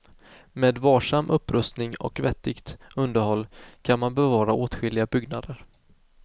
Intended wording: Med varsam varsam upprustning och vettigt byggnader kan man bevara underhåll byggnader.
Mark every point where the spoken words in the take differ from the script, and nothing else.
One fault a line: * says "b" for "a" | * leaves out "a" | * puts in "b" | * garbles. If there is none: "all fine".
* leaves out "varsam"
* says "underhåll" for "byggnader"
* says "åtskilliga" for "underhåll"